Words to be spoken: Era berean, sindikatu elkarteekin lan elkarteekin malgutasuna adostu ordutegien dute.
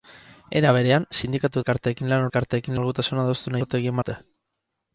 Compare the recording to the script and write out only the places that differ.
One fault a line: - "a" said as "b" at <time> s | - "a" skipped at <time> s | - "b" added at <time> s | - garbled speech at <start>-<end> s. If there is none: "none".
none